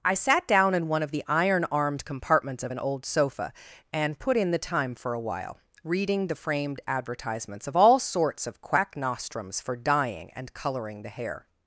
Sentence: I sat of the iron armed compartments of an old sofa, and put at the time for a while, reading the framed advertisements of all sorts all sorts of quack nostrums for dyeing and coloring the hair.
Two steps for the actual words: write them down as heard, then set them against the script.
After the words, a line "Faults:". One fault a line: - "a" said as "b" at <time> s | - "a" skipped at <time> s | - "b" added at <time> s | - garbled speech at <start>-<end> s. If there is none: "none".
I sat down in one of the iron armed compartments of an old sofa, and put in the time for a while, reading the framed advertisements of all sorts of quack nostrums for dyeing and coloring the hair.
Faults:
- "down in one" added at 0.5 s
- "at" said as "in" at 4.4 s
- "all sorts" skipped at 8.5 s